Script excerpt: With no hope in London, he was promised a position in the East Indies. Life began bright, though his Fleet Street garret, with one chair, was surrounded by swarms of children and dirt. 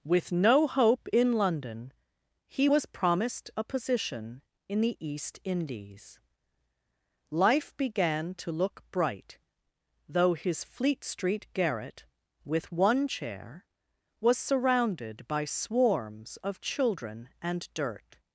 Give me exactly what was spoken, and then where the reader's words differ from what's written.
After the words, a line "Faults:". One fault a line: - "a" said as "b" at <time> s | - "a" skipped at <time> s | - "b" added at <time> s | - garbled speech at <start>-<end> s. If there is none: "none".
With no hope in London, he was promised a position in the East Indies. Life began to look bright, though his Fleet Street garret, with one chair, was surrounded by swarms of children and dirt.
Faults:
- "to look" added at 8.3 s